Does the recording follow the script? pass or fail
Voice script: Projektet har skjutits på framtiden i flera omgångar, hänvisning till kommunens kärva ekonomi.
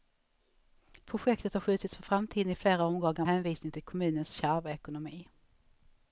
pass